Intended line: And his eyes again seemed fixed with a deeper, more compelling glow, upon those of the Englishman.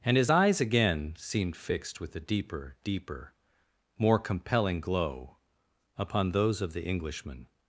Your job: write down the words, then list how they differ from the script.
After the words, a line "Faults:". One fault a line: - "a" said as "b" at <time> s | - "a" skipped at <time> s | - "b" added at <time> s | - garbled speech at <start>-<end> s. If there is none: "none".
And his eyes again seemed fixed with a deeper deeper, more compelling glow, upon those of the Englishman.
Faults:
- "deeper" added at 2.9 s